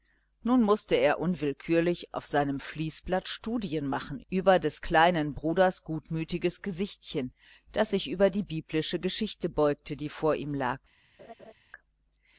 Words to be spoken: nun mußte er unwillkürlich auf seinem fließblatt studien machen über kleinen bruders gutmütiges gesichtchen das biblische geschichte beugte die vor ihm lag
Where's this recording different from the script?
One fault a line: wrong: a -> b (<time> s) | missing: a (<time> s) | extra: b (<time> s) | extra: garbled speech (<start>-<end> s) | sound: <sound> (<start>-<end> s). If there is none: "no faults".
extra: des (4.6 s)
extra: sich über die (7.9 s)
sound: laugh (11.2-11.5 s)